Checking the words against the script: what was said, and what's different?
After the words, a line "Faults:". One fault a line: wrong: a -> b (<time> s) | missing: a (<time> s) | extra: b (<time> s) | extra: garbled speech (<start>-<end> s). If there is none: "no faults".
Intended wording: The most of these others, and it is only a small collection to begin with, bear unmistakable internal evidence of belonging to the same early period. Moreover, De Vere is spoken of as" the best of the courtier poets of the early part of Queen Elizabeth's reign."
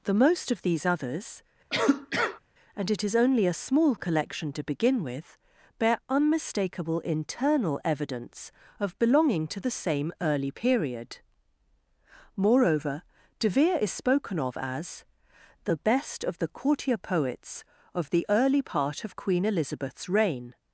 The most of these others, and it is only a small collection to begin with, bear unmistakable internal evidence of belonging to the same early period. Moreover, De Vere is spoken of as" the best of the courtier poets of the early part of Queen Elizabeth's reign."
Faults:
no faults